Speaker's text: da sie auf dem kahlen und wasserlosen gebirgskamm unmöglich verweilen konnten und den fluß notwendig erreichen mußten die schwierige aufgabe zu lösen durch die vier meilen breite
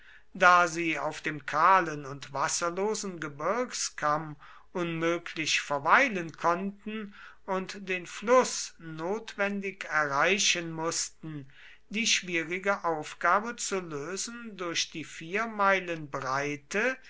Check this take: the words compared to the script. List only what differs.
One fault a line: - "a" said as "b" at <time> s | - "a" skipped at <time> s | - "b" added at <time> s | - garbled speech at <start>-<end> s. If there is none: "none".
none